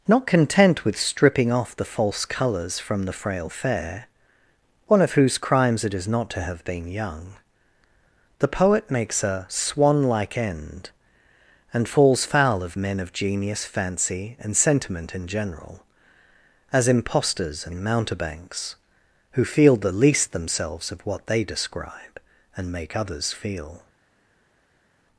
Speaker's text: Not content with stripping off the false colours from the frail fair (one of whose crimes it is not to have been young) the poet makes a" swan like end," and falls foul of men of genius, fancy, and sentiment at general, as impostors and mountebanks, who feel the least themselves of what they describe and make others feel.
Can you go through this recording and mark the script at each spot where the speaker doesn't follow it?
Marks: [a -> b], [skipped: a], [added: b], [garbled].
Not content with stripping off the false colours from the frail fair (one of whose crimes it is not to have been young) the poet makes a" swan like end," and falls foul of men of genius, fancy, and sentiment [at -> in] general, as impostors and mountebanks, who feel the least themselves of what they describe and make others feel.